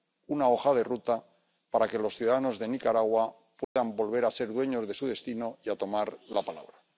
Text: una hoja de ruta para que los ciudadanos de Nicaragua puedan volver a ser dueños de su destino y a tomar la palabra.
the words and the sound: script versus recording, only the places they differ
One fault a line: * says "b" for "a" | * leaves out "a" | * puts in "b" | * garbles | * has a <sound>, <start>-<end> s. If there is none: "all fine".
* has a dropout, 3.6-3.8 s